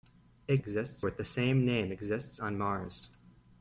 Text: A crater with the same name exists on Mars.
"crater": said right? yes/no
no